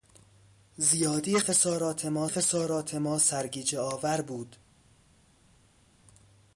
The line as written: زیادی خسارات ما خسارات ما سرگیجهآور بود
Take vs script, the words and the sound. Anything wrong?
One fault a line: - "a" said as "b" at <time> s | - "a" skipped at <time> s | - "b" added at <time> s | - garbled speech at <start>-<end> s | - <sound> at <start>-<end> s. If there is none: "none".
none